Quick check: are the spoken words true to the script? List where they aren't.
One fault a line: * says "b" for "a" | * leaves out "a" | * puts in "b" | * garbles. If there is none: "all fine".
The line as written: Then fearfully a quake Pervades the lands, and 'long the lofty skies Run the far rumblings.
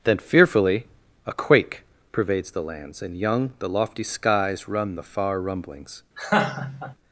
* says "young" for "long"